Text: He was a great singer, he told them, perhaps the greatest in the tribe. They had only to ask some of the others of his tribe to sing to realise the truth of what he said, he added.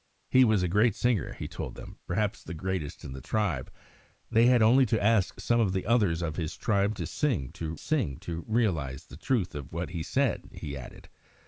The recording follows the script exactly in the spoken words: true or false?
false